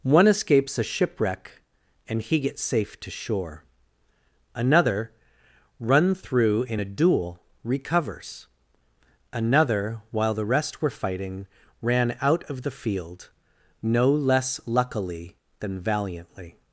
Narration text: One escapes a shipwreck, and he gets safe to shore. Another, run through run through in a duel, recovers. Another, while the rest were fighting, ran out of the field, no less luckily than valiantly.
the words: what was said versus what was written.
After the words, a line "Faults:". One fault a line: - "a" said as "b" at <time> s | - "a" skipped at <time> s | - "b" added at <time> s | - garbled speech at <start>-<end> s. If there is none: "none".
One escapes a shipwreck, and he gets safe to shore. Another, run through in a duel, recovers. Another, while the rest were fighting, ran out of the field, no less luckily than valiantly.
Faults:
- "run through" skipped at 6.6 s